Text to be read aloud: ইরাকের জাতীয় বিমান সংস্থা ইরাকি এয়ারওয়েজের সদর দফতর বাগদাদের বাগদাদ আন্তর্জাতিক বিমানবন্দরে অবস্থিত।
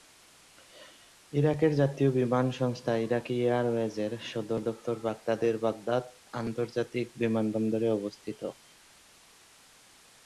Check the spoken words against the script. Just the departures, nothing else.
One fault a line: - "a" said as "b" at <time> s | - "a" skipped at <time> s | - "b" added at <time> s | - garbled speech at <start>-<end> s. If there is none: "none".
none